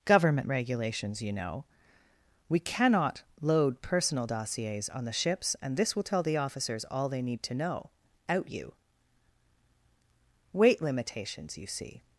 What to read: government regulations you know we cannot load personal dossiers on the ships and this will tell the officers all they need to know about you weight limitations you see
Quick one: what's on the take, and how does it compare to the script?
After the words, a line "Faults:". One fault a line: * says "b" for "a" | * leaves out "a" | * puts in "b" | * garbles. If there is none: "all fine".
government regulations you know we cannot load personal dossiers on the ships and this will tell the officers all they need to know out you weight limitations you see
Faults:
* says "out" for "about"